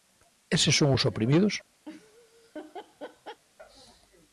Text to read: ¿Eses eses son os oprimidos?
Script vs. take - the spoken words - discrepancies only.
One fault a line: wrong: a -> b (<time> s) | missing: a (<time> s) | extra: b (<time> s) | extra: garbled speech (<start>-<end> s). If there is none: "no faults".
missing: eses (0.8 s)